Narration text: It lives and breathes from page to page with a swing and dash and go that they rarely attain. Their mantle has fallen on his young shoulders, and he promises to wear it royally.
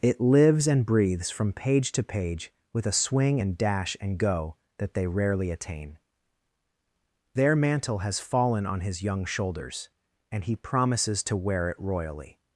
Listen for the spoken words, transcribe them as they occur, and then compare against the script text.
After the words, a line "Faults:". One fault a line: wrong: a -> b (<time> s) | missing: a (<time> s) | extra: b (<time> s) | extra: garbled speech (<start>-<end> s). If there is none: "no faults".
It lives and breathes from page to page with a swing and dash and go that they rarely attain. Their mantle has fallen on his young shoulders, and he promises to wear it royally.
Faults:
no faults